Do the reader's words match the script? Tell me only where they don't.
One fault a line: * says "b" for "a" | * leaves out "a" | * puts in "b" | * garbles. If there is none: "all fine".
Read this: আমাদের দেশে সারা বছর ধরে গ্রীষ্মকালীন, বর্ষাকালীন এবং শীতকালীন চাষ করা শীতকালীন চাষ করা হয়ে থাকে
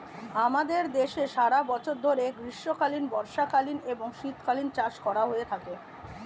* leaves out "শীতকালীন চাষ করা"